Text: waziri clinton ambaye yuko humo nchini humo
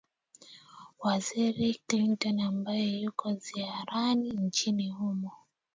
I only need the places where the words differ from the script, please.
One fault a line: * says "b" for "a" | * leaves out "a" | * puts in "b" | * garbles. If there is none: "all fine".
* says "ziarani" for "humo"